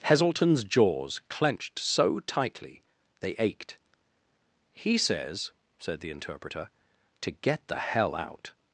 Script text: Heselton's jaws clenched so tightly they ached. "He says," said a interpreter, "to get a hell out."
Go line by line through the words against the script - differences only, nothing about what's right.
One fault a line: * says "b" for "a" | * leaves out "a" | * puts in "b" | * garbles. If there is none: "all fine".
* says "the" for "a"
* says "the" for "a"